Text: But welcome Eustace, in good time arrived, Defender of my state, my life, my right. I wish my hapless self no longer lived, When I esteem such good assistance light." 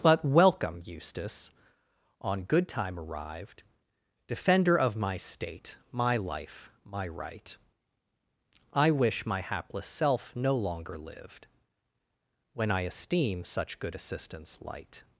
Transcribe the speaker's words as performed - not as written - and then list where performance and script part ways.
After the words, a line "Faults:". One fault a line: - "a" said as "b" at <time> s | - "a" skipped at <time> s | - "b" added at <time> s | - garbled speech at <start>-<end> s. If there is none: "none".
But welcome Eustace, on good time arrived, Defender of my state, my life, my right. I wish my hapless self no longer lived, When I esteem such good assistance light."
Faults:
- "in" said as "on" at 2.2 s